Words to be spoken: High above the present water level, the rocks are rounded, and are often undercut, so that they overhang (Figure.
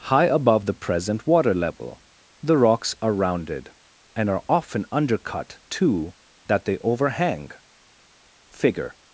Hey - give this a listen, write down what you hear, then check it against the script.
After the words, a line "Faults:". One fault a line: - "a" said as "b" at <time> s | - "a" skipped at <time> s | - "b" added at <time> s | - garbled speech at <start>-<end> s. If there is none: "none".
High above the present water level, the rocks are rounded, and are often undercut, too that they overhang (Figure.
Faults:
- "so" said as "too" at 5.7 s